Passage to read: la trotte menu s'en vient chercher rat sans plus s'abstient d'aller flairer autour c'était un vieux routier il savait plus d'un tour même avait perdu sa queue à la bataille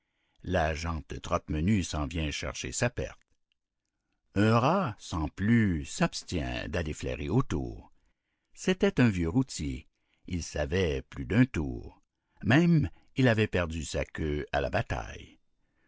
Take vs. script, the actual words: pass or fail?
fail